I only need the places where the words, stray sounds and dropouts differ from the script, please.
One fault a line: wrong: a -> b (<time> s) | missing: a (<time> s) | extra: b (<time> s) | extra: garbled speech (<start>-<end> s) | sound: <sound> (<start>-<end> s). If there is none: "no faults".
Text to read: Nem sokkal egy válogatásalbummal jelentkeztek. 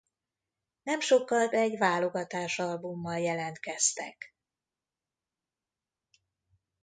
no faults